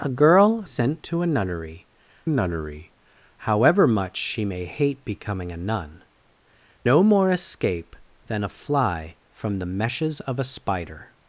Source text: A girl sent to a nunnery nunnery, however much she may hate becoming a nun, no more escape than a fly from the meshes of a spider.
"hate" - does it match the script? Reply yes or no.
yes